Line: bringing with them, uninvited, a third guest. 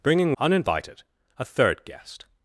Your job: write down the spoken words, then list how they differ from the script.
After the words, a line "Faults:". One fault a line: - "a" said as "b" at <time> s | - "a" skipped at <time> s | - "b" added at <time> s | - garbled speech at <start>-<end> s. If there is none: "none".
bringing uninvited, a third guest.
Faults:
- "with them" skipped at 0.3 s